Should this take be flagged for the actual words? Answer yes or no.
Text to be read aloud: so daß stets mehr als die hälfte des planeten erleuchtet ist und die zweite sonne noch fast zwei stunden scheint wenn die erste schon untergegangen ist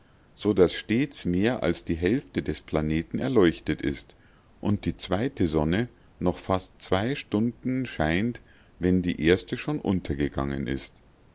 no